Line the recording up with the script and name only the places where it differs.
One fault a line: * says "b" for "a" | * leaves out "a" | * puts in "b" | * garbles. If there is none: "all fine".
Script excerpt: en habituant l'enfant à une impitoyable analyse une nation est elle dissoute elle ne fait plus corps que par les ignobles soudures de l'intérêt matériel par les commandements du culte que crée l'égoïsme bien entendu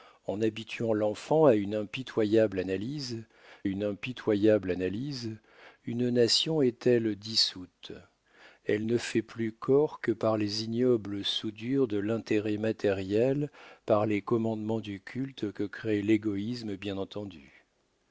* puts in "impitoyable analyse une"